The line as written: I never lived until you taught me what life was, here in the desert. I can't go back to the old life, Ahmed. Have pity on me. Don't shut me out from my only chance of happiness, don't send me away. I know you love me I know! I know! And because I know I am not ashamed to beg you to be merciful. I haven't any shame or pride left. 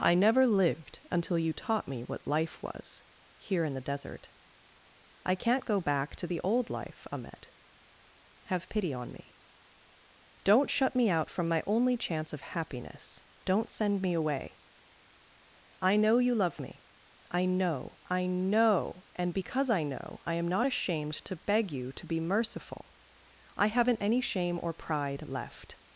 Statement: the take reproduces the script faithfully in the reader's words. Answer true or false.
true